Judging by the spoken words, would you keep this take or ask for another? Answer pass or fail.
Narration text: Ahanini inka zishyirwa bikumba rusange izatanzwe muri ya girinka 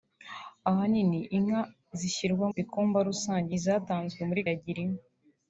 pass